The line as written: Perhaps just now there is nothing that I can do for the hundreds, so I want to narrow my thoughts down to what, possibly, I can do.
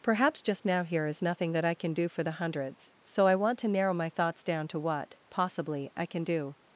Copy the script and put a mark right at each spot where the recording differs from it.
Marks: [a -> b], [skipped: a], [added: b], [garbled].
Perhaps just now [there -> here] is nothing that I can do for the hundreds, so I want to narrow my thoughts down to what, possibly, I can do.